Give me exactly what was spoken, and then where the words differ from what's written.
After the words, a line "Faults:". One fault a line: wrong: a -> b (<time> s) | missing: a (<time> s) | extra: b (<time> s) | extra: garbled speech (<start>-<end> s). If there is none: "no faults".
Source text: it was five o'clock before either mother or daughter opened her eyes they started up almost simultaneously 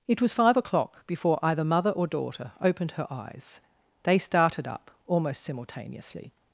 it was five o'clock before either mother or daughter opened her eyes they started up almost simultaneously
Faults:
no faults